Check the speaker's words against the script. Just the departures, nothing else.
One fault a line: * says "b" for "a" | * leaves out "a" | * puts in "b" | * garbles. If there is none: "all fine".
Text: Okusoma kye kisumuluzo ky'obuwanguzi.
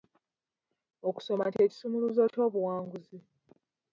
all fine